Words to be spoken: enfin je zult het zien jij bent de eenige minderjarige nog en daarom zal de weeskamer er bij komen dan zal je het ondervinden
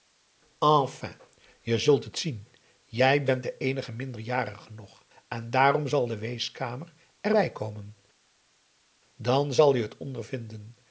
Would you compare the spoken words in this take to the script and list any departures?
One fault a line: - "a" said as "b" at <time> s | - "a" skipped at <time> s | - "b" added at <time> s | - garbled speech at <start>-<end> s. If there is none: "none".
none